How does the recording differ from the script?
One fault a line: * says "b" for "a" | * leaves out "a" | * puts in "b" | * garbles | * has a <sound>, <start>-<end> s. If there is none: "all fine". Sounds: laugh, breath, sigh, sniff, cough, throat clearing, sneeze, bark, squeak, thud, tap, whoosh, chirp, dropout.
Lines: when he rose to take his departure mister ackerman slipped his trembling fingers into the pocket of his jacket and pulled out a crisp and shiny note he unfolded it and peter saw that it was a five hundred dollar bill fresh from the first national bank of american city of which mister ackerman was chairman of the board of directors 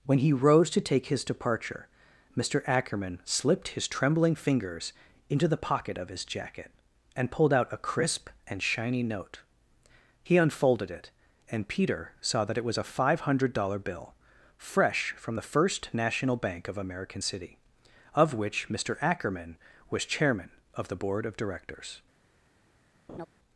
* has a laugh, 23.1-23.3 s